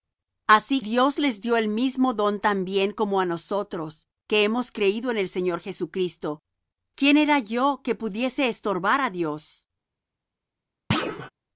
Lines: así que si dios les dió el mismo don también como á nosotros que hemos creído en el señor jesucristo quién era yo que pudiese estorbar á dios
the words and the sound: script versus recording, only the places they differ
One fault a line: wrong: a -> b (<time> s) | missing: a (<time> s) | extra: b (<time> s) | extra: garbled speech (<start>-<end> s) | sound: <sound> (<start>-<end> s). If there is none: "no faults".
missing: que si (0.8 s)
sound: thud (10.9-11.3 s)